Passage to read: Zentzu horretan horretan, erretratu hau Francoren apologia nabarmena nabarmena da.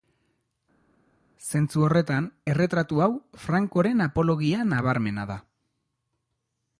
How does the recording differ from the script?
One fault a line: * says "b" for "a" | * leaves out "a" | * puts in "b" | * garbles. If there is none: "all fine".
* leaves out "horretan"
* leaves out "nabarmena"